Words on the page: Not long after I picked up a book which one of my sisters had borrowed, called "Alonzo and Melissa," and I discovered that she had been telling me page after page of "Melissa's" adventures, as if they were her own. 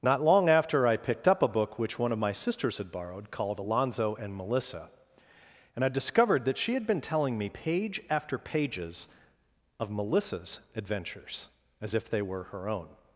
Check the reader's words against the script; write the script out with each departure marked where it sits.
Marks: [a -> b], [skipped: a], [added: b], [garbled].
Not long after I picked up a book which one of my sisters had borrowed, called "Alonzo and Melissa," and I discovered that she had been telling me page after [page -> pages] of "Melissa's" adventures, as if they were her own.